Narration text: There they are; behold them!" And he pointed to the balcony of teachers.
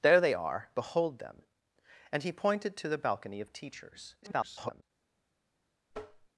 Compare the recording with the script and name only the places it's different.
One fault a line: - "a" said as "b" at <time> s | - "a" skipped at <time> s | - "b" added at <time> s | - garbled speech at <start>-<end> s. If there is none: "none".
- garbled speech at 4.2-4.8 s